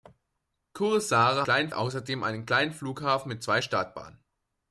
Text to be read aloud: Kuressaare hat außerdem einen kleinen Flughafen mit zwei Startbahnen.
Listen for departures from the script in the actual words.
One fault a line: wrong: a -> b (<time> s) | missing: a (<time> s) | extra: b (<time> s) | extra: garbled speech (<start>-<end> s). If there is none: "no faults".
wrong: hat -> kleinen (1.4 s)